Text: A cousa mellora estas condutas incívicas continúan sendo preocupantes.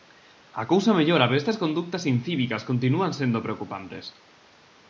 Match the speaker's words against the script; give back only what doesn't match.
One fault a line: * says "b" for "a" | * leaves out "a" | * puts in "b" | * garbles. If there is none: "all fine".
* puts in "pero"